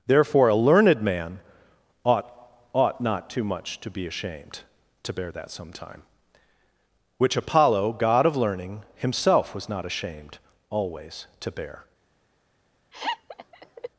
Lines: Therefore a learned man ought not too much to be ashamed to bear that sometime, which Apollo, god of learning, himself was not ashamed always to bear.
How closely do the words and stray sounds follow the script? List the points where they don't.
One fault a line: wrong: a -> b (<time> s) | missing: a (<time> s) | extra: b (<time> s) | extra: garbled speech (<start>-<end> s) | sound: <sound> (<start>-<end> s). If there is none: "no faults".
extra: ought (2.7 s)
sound: laugh (12.9-13.9 s)